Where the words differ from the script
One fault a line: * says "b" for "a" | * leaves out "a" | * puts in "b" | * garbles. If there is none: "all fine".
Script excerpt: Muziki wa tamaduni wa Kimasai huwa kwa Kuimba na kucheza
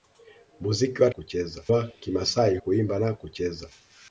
* says "kucheza" for "tamaduni"
* leaves out "huwa kwa"